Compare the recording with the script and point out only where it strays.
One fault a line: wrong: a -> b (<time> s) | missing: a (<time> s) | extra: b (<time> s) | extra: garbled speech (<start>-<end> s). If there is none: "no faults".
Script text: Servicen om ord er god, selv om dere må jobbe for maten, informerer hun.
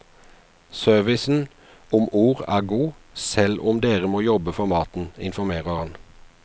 wrong: hun -> han (5.8 s)